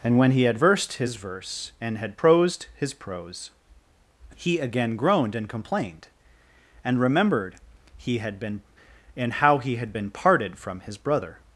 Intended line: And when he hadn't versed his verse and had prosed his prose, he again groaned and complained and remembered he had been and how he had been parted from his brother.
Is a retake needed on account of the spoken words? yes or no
yes